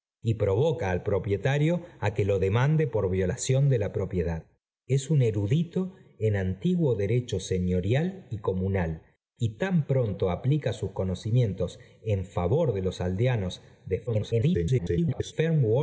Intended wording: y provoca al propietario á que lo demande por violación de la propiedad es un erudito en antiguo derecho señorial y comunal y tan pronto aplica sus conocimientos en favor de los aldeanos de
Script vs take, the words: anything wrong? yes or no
yes